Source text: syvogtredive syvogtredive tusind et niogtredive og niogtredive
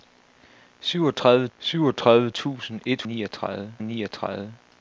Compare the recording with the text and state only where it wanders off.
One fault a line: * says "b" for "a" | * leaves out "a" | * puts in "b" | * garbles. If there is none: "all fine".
all fine